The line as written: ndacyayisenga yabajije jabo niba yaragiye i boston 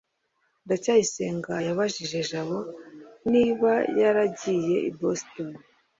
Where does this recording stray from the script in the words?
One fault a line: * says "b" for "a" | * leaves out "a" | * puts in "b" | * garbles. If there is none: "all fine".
all fine